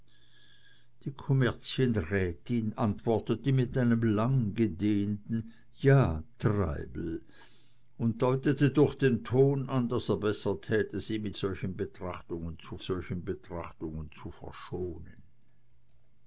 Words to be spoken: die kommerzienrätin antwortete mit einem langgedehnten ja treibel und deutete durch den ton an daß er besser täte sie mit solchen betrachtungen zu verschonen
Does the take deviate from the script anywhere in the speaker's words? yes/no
yes